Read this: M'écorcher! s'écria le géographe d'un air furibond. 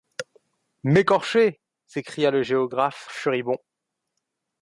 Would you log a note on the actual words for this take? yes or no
yes